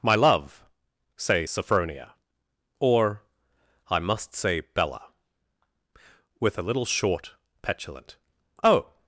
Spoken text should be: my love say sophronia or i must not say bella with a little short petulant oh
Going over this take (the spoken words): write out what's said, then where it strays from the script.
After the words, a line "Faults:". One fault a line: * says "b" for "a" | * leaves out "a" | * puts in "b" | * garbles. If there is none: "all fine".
my love say sophronia or i must say bella with a little short petulant oh
Faults:
* leaves out "not"